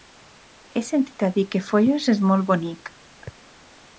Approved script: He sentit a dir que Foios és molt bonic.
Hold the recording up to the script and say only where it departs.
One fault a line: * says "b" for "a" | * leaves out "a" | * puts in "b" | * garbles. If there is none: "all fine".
all fine